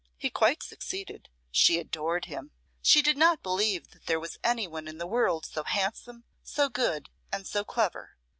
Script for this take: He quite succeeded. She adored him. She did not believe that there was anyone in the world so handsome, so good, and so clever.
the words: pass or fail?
pass